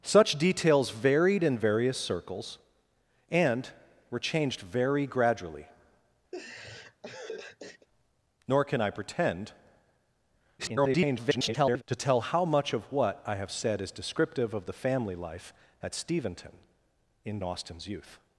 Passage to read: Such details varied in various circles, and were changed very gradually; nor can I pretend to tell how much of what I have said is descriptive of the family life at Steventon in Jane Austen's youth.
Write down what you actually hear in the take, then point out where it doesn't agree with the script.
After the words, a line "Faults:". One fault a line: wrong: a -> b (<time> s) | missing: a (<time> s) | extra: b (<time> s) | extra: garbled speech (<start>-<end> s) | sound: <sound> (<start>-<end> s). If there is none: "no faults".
Such details varied in various circles, and were changed very gradually; nor can I pretend [garbled] to tell how much of what I have said is descriptive of the family life at Steventon in Austen's youth.
Faults:
sound: laugh (6.3-7.9 s)
extra: garbled speech (10.6-11.8 s)
missing: Jane (17.4 s)